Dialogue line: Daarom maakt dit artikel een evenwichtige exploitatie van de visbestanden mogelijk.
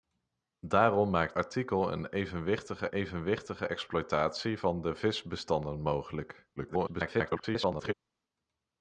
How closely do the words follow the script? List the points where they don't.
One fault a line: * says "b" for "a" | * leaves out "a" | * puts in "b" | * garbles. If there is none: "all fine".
* leaves out "dit"
* puts in "evenwichtige"
* garbles